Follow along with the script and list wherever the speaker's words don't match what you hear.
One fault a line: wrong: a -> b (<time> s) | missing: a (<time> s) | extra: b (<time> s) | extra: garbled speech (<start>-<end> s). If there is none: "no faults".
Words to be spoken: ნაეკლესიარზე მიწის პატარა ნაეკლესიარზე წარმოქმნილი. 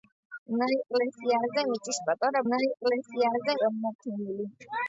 no faults